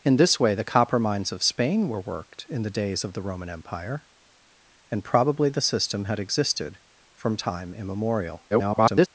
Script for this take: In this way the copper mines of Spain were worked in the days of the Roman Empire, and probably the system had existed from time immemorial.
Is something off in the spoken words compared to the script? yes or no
yes